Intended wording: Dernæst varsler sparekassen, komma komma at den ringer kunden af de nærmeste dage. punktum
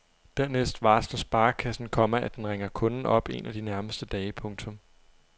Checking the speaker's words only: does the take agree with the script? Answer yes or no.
no